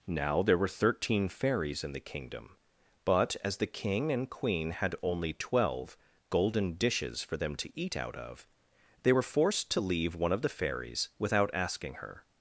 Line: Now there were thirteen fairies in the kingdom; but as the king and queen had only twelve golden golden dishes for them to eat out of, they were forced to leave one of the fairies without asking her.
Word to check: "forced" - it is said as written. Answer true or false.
true